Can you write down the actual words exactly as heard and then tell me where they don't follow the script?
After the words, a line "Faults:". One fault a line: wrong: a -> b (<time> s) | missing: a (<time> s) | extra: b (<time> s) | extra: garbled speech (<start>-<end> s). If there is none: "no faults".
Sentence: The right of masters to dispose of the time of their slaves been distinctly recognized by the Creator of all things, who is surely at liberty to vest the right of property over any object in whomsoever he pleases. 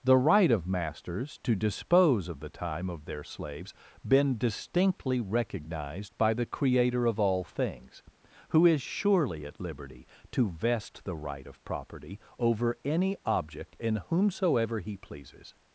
The right of masters to dispose of the time of their slaves been distinctly recognized by the Creator of all things, who is surely at liberty to vest the right of property over any object in whomsoever he pleases.
Faults:
no faults